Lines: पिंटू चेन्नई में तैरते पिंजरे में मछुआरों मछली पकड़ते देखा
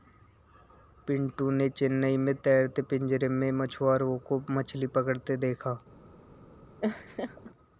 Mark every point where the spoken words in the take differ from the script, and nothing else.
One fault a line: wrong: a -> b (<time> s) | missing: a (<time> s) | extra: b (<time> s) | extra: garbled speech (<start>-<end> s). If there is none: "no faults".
extra: ने (1.5 s)
extra: को (4.3 s)